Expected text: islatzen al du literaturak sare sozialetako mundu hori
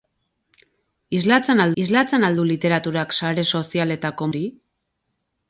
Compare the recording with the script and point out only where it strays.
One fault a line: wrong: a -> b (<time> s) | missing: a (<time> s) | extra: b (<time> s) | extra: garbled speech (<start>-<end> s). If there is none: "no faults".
extra: islatzen al (1.8 s)
missing: mundu (4.3 s)